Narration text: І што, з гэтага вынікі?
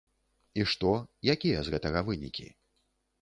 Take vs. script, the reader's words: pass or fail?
fail